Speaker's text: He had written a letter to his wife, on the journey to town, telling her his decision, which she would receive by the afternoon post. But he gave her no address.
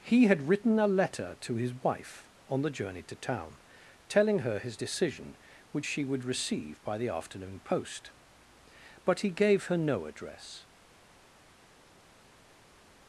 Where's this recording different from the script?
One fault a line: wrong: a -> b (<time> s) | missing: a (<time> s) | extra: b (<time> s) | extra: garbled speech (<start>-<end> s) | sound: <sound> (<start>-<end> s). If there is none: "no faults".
no faults